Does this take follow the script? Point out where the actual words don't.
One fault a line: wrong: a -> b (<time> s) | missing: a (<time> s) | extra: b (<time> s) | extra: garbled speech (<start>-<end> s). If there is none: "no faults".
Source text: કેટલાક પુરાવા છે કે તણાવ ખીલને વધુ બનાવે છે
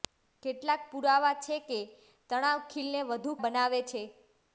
no faults